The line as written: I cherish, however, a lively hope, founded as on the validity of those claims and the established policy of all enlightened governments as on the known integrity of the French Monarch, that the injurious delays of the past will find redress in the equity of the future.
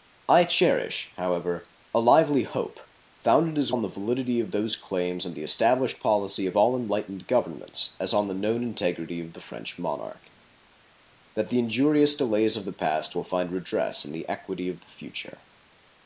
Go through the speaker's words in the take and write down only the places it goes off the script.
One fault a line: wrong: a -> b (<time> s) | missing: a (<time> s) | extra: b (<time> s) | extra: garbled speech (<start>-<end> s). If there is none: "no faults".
no faults